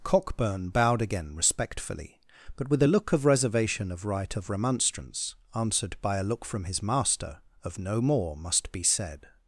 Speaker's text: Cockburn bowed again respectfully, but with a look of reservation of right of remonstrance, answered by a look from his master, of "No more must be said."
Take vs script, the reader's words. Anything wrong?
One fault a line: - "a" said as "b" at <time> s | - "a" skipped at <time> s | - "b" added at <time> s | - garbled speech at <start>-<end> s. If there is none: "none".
none